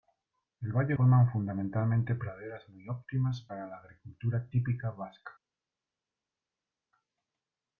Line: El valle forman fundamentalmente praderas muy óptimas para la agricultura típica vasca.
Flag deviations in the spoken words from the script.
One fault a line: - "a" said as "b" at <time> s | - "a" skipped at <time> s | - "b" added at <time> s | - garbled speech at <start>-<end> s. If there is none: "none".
none